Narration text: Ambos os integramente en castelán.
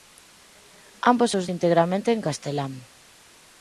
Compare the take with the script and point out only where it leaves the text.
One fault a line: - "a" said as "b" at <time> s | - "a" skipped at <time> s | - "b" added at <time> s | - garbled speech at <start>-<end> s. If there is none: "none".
none